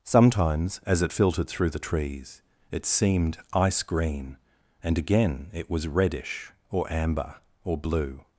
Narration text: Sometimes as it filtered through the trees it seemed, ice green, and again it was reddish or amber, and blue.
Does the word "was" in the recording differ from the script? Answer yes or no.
no